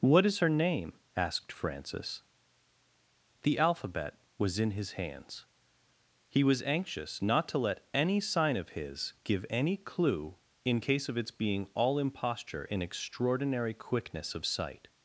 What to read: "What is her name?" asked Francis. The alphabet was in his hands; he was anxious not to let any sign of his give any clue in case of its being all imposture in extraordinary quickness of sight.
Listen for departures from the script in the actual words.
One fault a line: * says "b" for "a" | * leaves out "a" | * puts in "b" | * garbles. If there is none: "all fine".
all fine